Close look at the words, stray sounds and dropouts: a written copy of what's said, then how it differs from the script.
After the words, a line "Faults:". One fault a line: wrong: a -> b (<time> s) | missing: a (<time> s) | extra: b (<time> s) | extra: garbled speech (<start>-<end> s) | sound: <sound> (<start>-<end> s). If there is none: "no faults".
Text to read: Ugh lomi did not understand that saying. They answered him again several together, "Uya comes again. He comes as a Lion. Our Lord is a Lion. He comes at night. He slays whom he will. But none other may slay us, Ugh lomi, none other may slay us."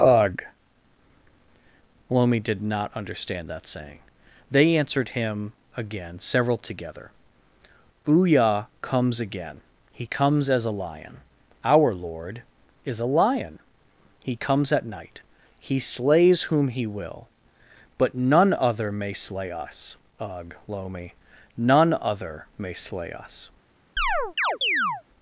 Ugh lomi did not understand that saying. They answered him again several together, "Uya comes again. He comes as a Lion. Our Lord is a Lion. He comes at night. He slays whom he will. But none other may slay us, Ugh lomi, none other may slay us."
Faults:
sound: chirp (24.0-25.0 s)